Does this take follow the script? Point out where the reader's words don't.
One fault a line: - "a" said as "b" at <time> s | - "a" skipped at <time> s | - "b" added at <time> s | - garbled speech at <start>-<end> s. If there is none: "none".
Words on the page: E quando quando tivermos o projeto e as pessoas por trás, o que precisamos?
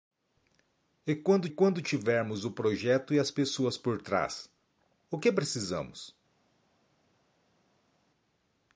none